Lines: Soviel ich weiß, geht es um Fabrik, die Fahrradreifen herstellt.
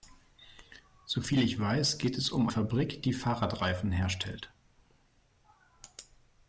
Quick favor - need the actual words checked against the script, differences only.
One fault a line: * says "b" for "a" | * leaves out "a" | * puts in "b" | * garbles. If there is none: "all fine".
all fine